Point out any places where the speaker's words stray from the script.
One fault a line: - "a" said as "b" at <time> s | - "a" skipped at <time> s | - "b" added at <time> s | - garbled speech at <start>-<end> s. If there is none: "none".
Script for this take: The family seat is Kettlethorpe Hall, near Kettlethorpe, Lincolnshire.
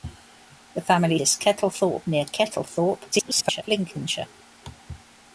- "seat" skipped at 1.2 s
- "Hall" skipped at 2.1 s
- garbled speech at 3.1-3.6 s